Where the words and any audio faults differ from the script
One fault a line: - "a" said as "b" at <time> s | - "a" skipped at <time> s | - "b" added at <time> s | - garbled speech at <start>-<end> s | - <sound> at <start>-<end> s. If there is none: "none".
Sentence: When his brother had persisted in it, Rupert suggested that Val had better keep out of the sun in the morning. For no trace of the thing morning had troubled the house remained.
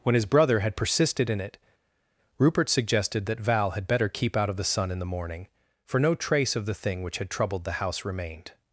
- "morning" said as "which" at 7.0 s